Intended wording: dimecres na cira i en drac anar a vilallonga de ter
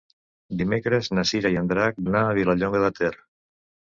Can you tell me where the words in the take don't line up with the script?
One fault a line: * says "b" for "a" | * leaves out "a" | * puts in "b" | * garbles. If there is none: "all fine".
all fine